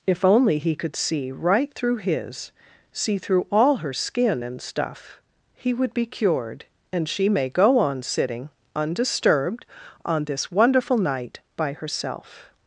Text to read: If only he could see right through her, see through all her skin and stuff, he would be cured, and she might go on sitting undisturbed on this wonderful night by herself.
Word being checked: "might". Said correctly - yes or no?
no